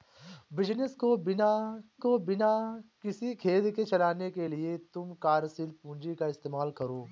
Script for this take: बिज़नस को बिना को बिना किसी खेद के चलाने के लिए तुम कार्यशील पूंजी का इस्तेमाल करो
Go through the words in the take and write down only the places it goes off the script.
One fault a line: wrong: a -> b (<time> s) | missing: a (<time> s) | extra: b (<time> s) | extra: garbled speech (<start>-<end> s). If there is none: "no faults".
no faults